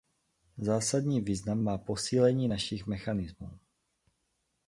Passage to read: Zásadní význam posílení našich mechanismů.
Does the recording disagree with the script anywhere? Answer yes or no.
yes